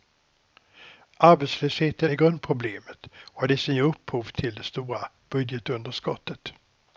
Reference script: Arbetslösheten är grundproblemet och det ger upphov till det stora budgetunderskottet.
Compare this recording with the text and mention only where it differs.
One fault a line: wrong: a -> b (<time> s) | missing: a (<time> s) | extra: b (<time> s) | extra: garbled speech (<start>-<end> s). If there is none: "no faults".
extra: som (3.6 s)